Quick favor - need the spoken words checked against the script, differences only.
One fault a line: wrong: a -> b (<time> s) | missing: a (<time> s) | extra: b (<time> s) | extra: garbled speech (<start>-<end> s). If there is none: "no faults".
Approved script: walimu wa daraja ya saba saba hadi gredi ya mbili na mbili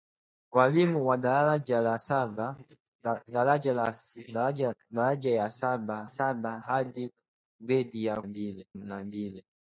no faults